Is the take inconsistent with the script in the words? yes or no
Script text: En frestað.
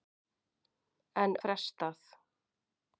no